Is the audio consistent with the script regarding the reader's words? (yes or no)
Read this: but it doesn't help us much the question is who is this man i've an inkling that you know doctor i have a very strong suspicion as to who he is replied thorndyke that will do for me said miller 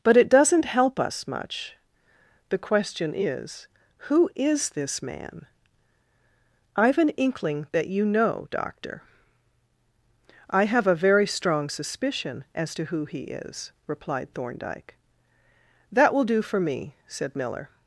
yes